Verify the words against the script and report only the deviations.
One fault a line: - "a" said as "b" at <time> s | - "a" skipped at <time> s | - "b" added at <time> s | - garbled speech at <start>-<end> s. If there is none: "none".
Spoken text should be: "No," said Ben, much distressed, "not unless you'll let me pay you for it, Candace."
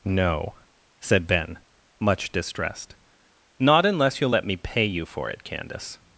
none